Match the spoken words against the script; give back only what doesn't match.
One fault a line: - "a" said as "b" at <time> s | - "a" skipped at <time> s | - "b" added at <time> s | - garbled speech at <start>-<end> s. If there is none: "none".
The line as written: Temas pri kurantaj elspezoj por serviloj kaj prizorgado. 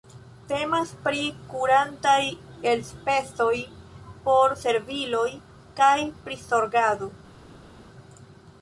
none